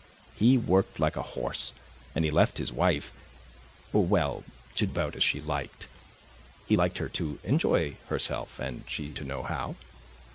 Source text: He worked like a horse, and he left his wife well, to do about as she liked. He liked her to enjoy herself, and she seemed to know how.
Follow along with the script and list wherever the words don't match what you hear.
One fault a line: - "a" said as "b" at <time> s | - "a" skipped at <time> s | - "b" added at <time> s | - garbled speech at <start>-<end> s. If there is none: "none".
- "do" skipped at 4.9 s
- "seemed" skipped at 9.1 s